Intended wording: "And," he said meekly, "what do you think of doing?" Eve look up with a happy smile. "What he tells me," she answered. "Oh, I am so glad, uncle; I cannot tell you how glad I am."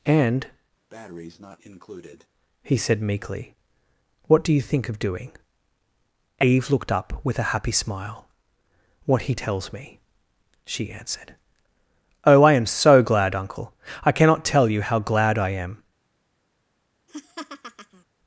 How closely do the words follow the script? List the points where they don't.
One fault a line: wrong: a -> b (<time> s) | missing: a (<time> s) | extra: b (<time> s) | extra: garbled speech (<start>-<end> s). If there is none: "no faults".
wrong: look -> looked (6.7 s)